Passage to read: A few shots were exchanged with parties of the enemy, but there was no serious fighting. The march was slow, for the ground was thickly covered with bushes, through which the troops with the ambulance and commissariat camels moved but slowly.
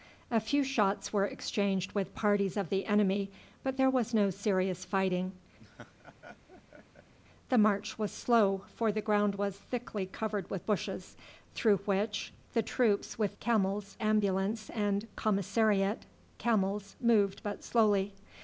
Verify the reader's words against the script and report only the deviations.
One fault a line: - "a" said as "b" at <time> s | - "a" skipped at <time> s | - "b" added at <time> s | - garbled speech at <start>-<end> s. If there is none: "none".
- "the" said as "camels" at 13.4 s